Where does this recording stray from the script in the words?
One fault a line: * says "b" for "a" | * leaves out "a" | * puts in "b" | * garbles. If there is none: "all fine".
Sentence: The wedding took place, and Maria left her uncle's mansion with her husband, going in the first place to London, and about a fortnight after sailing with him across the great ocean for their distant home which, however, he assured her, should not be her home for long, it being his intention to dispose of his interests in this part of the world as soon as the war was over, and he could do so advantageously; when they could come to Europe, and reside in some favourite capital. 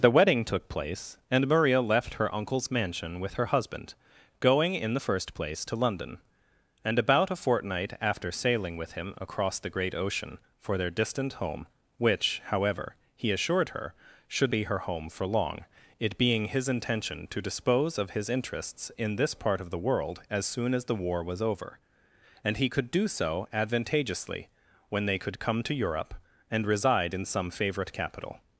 * leaves out "not"